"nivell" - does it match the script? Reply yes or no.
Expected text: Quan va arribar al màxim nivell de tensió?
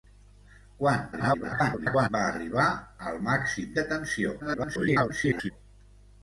no